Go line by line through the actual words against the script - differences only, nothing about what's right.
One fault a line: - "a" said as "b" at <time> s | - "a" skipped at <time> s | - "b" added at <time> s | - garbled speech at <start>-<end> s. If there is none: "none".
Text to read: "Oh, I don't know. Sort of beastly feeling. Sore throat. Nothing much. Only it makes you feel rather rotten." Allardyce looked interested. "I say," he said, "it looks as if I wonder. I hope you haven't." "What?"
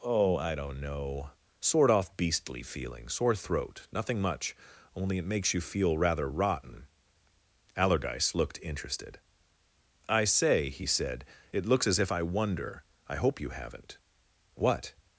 - "of" said as "off" at 1.9 s